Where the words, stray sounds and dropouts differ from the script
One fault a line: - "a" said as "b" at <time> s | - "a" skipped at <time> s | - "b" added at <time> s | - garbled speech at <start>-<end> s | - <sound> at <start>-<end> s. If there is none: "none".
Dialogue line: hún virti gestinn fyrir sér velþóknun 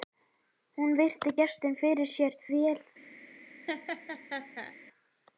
- laugh at 3.7-4.7 s